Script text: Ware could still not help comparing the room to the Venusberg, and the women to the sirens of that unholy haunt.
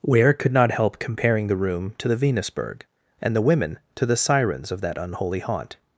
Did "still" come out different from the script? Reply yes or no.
yes